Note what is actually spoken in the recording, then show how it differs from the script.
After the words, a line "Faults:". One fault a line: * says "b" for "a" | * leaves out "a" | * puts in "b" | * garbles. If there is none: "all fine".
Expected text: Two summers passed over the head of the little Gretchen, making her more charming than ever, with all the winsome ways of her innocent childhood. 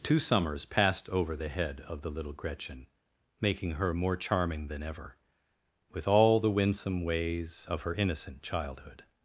Two summers passed over the head of the little Gretchen, making her more charming than ever, with all the winsome ways of her innocent childhood.
Faults:
all fine